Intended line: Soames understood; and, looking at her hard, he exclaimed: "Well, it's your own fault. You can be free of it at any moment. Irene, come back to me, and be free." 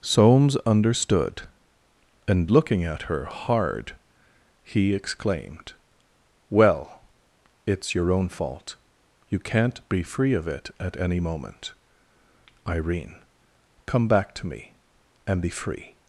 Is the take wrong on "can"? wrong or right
wrong